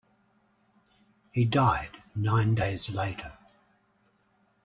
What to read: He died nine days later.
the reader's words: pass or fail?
pass